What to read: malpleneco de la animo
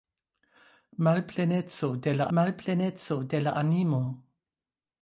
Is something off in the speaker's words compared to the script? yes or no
yes